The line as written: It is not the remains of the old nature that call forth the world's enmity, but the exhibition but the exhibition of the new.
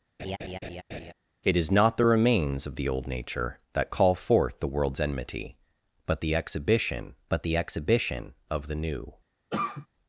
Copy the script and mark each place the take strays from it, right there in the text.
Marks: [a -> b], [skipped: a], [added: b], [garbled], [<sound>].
[laugh] It is not the remains of the old nature that call forth the world's enmity, but the exhibition but the exhibition of the new. [cough]